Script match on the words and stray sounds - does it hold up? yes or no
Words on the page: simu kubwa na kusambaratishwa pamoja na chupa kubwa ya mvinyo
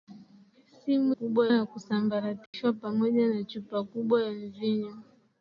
no